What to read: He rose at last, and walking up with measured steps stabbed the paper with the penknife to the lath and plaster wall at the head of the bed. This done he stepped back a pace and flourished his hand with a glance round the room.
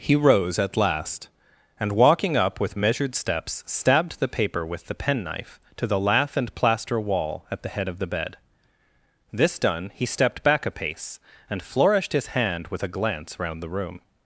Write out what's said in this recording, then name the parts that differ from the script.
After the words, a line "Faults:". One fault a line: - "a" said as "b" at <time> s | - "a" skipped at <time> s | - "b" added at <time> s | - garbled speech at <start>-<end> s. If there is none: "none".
He rose at last, and walking up with measured steps stabbed the paper with the penknife to the lath and plaster wall at the head of the bed. This done he stepped back a pace and flourished his hand with a glance round the room.
Faults:
none